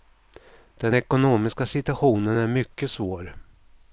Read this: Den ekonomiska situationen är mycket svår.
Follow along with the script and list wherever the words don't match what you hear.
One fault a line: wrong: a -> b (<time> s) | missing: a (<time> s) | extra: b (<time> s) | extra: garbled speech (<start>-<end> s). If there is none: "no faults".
no faults